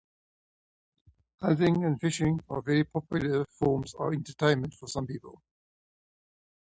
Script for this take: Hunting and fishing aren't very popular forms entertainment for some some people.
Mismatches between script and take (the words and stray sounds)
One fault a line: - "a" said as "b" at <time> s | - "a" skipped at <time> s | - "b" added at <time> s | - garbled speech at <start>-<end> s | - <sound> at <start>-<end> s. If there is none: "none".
- "aren't" said as "are" at 2.5 s
- "of" added at 3.9 s
- "some" skipped at 5.1 s